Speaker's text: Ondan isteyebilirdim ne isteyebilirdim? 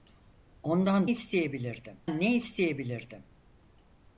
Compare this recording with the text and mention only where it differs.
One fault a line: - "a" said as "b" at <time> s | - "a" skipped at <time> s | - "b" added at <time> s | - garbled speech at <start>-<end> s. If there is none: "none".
none